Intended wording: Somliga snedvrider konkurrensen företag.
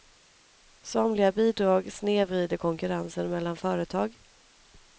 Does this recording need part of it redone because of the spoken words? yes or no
yes